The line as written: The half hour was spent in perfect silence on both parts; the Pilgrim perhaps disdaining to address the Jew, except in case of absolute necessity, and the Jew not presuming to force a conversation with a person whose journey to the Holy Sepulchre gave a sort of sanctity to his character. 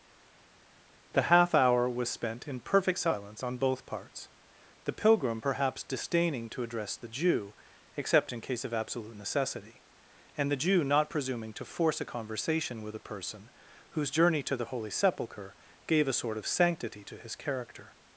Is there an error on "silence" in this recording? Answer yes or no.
no